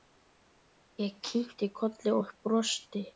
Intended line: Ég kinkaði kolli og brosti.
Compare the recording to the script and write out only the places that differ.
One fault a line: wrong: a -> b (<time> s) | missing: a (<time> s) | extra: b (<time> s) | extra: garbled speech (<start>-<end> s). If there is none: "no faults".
no faults